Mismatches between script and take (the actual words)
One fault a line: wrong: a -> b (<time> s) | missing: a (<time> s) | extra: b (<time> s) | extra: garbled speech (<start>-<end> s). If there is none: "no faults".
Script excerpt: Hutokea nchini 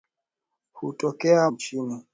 no faults